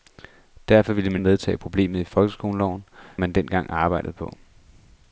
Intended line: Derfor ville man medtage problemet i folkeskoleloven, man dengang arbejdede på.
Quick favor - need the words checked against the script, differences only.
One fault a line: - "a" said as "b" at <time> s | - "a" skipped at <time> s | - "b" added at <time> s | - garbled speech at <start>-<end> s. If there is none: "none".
none